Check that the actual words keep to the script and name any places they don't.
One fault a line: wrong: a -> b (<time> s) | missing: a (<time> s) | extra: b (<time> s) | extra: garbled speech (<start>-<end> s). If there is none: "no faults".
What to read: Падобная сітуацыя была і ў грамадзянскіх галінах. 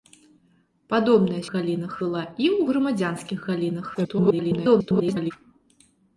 wrong: сітуацыя -> галінах (1.6 s)
extra: garbled speech (3.9-5.3 s)